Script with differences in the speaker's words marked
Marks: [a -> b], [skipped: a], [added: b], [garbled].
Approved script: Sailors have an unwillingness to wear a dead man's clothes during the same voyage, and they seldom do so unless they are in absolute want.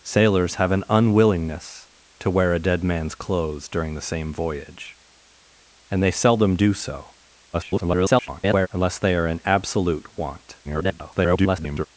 Sailors have an unwillingness to wear a dead man's clothes during the same voyage, and they seldom do so [garbled] unless they are in absolute want. [garbled]